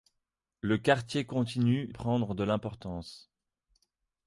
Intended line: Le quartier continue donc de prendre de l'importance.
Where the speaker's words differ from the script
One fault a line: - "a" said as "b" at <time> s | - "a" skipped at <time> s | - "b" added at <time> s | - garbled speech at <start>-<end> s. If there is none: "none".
- "donc de" skipped at 1.9 s